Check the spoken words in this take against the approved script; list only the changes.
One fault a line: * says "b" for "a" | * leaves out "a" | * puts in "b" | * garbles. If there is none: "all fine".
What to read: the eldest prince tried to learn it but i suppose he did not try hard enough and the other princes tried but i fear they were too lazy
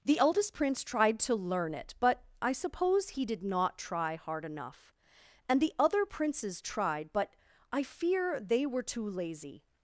all fine